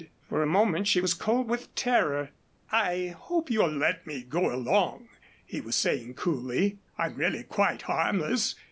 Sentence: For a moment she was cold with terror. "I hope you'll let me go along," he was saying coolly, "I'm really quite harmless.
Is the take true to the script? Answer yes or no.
yes